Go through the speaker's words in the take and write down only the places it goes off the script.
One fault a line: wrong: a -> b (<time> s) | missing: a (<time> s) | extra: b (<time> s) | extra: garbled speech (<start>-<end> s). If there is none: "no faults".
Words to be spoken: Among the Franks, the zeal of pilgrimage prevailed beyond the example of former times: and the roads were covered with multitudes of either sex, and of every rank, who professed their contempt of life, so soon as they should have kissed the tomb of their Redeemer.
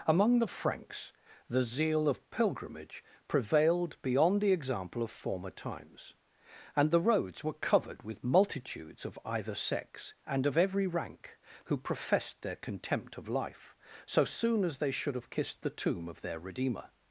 no faults